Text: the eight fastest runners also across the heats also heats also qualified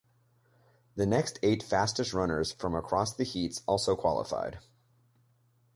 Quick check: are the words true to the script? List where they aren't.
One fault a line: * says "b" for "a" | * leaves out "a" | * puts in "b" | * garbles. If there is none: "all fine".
* puts in "next"
* says "from" for "also"
* leaves out "heats also"